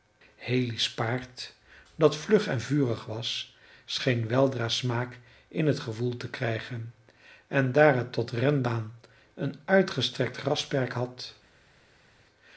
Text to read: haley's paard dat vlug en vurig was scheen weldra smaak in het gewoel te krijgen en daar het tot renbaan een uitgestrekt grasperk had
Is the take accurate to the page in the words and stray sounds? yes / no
yes